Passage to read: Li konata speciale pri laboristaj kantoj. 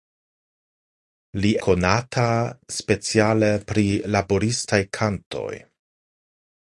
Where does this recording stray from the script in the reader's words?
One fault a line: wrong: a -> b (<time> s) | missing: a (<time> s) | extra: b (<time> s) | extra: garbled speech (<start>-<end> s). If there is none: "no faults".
no faults